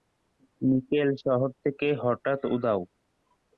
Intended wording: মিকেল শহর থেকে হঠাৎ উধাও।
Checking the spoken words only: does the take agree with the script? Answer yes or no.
yes